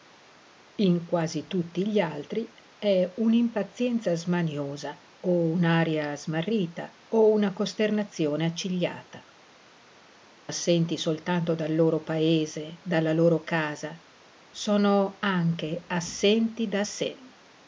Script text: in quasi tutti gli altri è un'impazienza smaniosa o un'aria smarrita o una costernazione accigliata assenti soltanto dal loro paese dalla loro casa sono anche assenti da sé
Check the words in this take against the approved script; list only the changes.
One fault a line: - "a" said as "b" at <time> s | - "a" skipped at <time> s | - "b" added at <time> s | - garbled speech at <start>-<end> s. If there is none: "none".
none